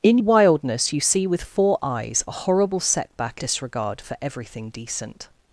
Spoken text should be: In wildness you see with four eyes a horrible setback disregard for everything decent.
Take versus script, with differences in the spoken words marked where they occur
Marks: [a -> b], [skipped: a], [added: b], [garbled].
In wildness you see with four eyes a horrible setback disregard for everything decent.